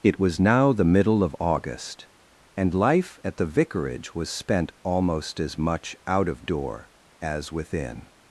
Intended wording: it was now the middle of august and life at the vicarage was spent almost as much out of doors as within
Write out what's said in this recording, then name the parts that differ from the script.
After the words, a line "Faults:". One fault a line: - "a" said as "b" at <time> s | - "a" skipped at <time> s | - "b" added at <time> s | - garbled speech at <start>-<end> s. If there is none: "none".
it was now the middle of august and life at the vicarage was spent almost as much out of door as within
Faults:
- "doors" said as "door" at 6.5 s